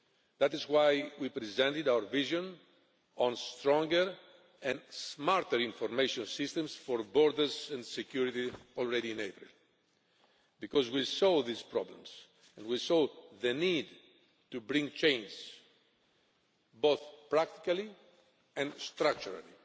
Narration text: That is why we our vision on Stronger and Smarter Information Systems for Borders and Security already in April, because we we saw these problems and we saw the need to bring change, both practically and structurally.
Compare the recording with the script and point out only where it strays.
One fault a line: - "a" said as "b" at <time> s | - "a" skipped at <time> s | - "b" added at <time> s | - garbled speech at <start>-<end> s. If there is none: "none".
- "presented" added at 1.3 s
- "we" skipped at 11.1 s